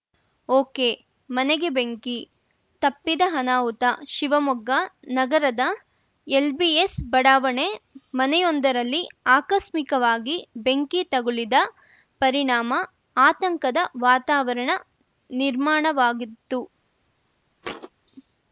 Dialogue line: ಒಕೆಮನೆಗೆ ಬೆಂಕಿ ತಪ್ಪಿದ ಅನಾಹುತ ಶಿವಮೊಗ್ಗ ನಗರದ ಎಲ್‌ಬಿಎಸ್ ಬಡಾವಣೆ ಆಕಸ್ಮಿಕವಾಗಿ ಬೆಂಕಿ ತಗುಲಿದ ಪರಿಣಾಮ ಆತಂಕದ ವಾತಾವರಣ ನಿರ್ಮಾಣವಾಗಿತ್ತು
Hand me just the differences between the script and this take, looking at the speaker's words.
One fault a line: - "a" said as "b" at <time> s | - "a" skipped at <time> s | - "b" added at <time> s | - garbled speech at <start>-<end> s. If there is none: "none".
- "ಮನೆಯೊಂದರಲ್ಲಿ" added at 8.1 s